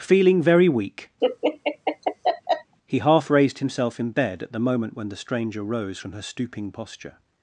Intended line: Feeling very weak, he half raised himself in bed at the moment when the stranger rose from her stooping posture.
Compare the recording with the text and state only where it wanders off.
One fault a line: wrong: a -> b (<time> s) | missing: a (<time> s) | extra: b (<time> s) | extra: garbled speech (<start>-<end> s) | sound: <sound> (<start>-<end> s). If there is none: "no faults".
sound: laugh (1.2-2.7 s)